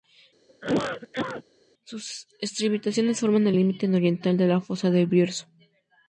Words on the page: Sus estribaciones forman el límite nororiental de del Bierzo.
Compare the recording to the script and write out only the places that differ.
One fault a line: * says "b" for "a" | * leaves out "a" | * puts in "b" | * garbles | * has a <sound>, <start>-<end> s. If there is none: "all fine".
* has a cough, 0.5-1.4 s
* puts in "la fosa"